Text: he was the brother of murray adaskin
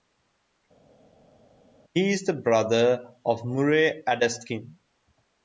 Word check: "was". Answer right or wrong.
wrong